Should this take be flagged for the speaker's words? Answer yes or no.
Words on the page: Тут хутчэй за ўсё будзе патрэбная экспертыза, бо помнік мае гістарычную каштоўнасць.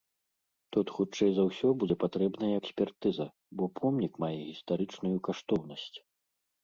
no